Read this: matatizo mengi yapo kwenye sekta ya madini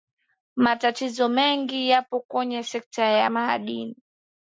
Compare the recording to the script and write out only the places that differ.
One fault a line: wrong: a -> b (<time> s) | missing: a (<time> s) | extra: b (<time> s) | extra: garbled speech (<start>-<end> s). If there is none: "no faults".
no faults